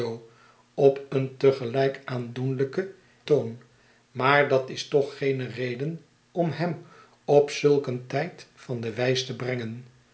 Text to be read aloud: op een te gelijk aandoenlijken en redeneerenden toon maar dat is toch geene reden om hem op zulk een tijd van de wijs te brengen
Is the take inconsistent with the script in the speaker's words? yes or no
yes